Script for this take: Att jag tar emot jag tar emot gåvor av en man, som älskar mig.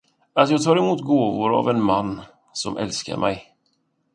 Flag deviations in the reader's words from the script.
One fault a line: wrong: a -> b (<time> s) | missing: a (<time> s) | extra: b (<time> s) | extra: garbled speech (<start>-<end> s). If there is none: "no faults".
missing: jag tar emot (1.0 s)